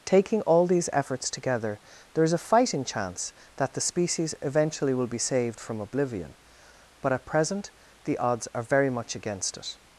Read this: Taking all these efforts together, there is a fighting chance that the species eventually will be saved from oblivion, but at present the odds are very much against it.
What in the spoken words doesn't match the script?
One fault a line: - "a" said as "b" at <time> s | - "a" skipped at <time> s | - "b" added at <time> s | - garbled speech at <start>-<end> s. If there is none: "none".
none